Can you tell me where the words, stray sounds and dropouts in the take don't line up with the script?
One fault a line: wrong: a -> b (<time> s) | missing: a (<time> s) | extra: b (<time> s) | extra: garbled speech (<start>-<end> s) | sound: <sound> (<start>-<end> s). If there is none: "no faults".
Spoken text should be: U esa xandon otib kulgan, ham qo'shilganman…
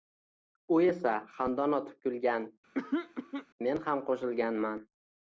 sound: throat clearing (2.7-3.5 s)
extra: men (3.7 s)